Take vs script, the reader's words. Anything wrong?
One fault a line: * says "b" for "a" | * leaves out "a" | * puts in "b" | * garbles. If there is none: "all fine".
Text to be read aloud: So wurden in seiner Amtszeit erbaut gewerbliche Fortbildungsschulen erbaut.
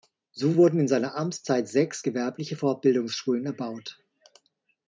* says "sechs" for "erbaut"